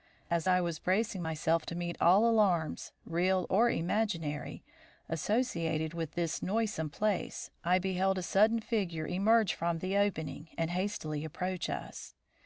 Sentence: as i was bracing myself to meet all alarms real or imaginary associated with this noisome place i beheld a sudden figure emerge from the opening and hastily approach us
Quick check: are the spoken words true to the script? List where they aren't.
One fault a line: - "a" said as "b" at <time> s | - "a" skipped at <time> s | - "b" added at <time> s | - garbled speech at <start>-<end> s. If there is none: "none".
none